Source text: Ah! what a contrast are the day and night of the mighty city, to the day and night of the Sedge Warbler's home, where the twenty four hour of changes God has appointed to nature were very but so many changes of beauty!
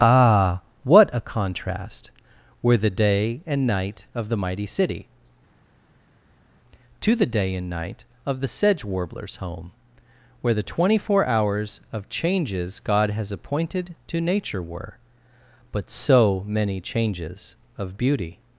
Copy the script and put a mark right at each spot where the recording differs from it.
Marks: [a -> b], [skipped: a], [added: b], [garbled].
Ah! what a contrast [are -> were] the day and night of the mighty city, to the day and night of the Sedge Warbler's home, where the twenty four [hour -> hours] of changes God has appointed to nature were [skipped: very] but so many changes of beauty!